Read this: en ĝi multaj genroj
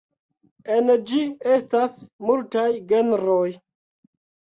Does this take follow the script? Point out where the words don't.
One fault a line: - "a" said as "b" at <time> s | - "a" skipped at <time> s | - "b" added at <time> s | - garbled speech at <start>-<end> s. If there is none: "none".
- "estas" added at 1.6 s